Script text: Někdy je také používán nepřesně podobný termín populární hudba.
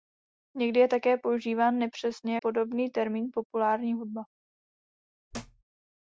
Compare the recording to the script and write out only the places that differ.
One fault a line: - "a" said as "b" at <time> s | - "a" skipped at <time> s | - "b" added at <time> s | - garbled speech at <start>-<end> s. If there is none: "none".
none